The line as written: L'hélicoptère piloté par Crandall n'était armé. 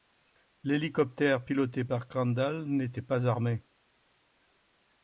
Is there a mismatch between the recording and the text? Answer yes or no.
yes